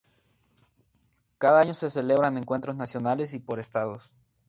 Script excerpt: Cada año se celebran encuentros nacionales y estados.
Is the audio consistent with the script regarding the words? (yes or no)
no